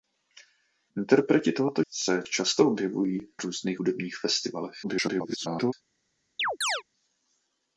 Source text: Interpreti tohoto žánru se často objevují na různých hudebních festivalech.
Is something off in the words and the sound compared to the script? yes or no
yes